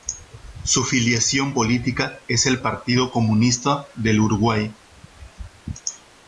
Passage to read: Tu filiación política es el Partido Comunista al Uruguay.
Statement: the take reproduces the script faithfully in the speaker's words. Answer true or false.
false